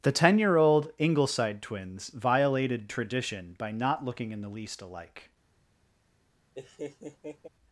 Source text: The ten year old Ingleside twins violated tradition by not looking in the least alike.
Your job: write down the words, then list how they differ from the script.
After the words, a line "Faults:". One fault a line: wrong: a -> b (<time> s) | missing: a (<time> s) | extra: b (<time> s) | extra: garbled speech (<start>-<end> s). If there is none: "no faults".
The ten year old Ingleside twins violated tradition by not looking in the least alike.
Faults:
no faults